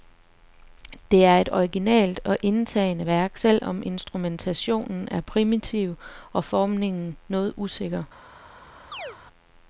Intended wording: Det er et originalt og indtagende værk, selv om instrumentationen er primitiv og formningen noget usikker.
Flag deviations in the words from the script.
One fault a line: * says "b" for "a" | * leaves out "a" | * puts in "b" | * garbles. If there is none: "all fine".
all fine